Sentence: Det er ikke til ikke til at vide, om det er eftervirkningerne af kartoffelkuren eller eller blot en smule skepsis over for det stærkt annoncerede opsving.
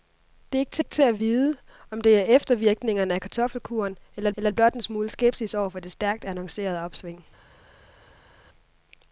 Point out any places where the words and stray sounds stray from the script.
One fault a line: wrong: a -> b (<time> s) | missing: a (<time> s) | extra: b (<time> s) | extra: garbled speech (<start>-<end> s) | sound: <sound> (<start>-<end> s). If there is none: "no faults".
no faults